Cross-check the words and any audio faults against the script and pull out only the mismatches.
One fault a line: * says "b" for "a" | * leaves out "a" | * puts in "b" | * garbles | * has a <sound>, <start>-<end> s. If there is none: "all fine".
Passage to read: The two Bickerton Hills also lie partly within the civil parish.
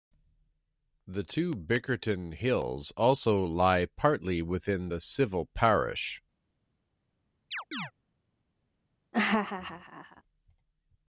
* has a chirp, 7.5-7.9 s
* has a laugh, 9.1-10.2 s